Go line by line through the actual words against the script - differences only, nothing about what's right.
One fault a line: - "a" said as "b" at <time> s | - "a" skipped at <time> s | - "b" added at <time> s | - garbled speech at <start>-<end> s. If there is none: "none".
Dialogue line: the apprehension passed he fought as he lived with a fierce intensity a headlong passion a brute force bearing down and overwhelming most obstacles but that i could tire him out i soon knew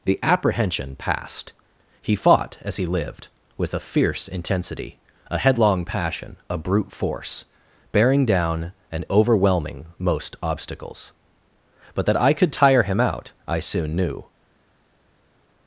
none